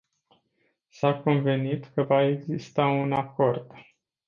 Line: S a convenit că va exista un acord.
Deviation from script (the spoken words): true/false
false